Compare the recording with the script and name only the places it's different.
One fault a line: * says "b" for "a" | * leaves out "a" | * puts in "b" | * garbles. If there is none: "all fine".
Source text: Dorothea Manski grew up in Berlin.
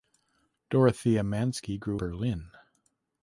* leaves out "up in"